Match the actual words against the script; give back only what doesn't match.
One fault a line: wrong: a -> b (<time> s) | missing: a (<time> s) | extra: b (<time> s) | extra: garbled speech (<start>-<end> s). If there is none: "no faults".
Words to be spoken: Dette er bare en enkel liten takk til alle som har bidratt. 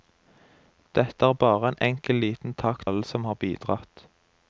missing: til (2.9 s)